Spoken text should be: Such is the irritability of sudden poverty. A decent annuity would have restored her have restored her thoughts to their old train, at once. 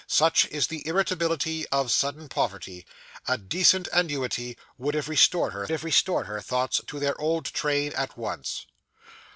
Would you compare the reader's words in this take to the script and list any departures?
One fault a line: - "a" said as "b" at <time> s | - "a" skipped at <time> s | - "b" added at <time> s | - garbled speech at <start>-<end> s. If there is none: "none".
none